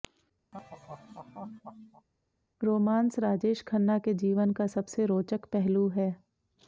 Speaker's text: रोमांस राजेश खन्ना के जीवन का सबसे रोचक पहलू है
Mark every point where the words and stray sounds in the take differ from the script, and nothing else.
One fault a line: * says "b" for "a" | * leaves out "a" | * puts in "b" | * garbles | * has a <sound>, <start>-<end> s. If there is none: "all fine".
* has a laugh, 0.5-2.1 s